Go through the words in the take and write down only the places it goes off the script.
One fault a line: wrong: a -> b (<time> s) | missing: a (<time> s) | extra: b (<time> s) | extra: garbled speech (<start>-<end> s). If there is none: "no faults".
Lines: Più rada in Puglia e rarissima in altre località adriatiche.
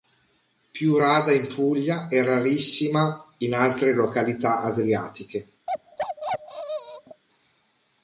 no faults